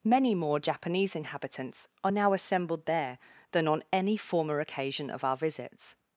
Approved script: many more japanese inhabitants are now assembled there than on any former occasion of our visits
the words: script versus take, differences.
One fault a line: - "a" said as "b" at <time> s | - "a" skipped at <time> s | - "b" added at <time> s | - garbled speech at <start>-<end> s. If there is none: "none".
none